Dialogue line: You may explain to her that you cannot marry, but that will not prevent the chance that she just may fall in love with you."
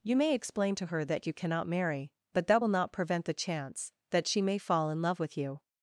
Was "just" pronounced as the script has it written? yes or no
no